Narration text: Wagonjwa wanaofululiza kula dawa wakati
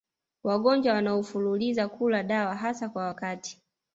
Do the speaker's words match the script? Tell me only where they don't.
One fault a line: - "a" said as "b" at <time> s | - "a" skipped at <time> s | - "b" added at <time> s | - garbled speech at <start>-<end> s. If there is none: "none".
- "hasa kwa" added at 2.5 s